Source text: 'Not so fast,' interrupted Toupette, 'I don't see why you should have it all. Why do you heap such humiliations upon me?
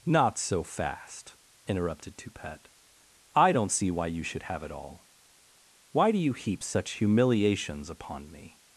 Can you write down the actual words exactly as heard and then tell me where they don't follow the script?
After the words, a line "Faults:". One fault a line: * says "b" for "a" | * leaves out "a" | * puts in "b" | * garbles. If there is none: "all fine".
'Not so fast,' interrupted Toupette, 'I don't see why you should have it all. Why do you heap such humiliations upon me?
Faults:
all fine